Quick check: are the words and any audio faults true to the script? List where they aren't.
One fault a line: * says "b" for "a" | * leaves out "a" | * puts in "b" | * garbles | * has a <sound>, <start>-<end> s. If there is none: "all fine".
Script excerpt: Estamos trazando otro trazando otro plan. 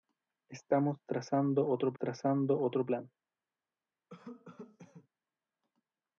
* has a cough, 4.1-5.1 s